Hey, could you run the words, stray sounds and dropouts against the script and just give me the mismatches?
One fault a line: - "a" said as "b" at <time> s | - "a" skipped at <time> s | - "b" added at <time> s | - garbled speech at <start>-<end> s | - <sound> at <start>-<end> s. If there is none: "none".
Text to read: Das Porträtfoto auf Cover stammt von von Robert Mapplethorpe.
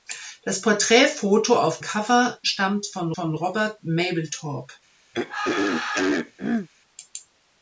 - throat clearing at 5.1-6.7 s